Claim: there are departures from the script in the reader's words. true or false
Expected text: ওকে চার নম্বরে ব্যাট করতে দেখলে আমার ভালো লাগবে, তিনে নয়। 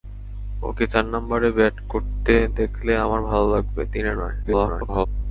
true